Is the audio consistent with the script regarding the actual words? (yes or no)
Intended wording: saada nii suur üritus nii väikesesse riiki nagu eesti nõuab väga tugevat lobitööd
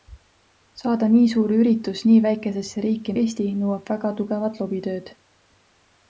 no